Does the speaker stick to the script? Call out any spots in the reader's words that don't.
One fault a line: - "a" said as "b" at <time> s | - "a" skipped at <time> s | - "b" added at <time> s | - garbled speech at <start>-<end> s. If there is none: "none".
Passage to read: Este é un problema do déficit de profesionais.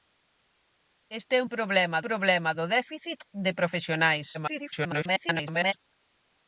- "problema" added at 2.1 s
- garbled speech at 4.3-5.7 s